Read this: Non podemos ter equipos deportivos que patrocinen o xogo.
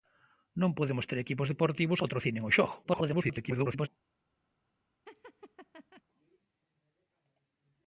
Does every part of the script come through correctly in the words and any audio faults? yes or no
no